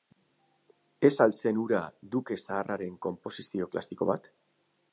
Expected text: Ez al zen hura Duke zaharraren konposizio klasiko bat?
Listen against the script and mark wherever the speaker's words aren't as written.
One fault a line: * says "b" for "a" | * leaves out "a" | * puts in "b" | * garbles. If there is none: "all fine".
all fine